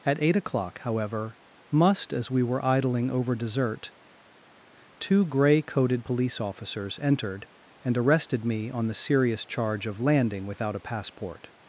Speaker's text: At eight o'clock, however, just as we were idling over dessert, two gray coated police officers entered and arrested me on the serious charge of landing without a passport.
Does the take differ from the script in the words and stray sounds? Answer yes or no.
yes